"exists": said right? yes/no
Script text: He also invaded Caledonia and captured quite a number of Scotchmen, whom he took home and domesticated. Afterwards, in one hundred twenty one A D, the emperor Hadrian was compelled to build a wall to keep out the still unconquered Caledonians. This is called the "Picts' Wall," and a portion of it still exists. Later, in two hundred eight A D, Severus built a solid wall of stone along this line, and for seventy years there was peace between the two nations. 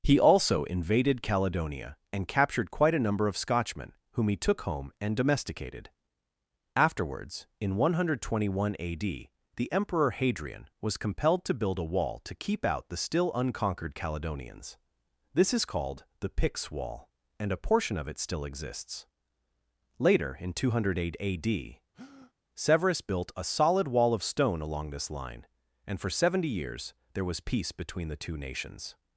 yes